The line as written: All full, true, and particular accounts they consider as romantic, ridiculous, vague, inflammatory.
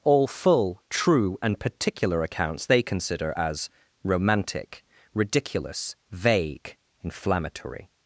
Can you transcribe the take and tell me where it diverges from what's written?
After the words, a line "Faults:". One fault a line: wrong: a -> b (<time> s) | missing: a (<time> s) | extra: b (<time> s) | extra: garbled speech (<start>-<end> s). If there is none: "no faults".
All full, true, and particular accounts they consider as romantic, ridiculous, vague, inflammatory.
Faults:
no faults